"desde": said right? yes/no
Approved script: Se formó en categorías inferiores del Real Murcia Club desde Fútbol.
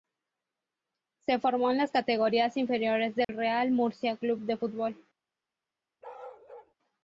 no